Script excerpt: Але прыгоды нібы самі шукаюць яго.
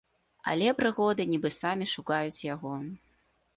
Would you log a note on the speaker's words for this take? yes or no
no